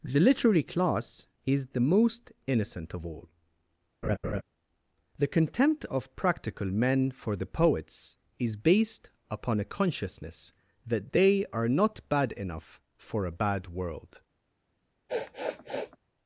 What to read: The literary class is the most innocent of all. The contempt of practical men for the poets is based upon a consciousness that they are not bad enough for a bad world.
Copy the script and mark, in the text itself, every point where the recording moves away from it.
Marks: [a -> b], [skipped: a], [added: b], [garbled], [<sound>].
The literary class is the most innocent of all. [laugh] The contempt of practical men for the poets is based upon a consciousness that they are not bad enough for a bad world. [sniff]